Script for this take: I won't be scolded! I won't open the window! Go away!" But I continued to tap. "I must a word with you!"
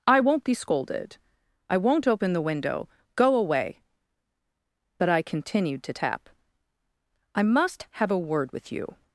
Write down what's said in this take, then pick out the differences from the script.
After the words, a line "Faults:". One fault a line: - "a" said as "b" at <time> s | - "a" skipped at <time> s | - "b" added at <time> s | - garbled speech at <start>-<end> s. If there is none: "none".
I won't be scolded! I won't open the window! Go away!" But I continued to tap. "I must have a word with you!"
Faults:
- "have" added at 7.9 s